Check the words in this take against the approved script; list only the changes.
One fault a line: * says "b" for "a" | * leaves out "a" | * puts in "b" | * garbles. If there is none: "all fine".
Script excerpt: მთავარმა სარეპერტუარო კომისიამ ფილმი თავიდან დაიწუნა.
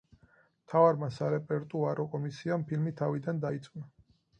all fine